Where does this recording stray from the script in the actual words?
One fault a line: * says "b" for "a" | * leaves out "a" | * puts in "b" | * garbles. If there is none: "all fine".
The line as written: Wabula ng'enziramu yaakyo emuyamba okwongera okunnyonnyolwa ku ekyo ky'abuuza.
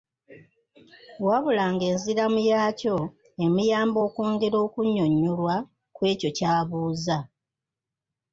all fine